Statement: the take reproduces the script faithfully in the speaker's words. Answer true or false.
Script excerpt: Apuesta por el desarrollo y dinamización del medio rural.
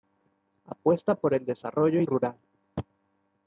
false